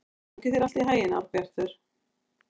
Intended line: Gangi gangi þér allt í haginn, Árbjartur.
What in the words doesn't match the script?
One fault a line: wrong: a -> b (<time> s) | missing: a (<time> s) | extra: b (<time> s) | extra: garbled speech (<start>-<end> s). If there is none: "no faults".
missing: gangi (0.5 s)